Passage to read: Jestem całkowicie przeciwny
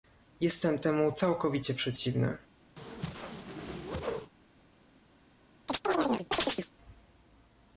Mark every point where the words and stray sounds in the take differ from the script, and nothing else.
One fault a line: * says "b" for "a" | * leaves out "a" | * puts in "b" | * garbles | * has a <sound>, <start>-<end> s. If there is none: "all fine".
* puts in "temu"
* has a whoosh, 2.8-4.3 s
* has a chirp, 5.7-6.7 s